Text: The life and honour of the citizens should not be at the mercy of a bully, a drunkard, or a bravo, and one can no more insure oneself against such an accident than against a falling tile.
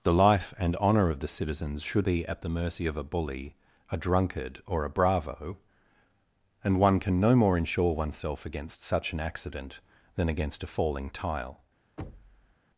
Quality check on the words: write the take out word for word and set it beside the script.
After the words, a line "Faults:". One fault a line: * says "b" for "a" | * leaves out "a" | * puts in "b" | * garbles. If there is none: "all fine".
The life and honour of the citizens should be at the mercy of a bully, a drunkard, or a bravo, and one can no more insure oneself against such an accident than against a falling tile.
Faults:
* leaves out "not"